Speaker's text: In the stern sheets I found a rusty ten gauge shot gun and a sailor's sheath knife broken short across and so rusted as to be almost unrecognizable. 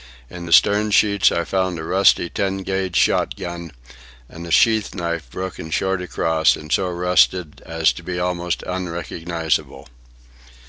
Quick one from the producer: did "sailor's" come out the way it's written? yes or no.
no